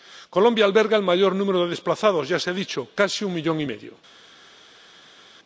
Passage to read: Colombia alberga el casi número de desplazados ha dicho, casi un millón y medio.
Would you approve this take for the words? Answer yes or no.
no